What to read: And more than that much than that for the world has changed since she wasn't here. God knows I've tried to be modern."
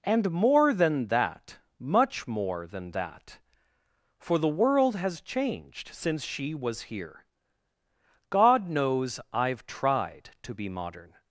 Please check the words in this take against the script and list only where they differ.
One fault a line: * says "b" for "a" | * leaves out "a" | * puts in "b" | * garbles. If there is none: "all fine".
* puts in "more"
* says "was" for "wasn't"